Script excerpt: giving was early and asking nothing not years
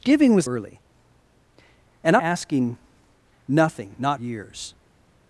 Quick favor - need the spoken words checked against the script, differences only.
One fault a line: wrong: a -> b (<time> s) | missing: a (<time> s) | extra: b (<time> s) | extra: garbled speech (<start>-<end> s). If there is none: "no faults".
no faults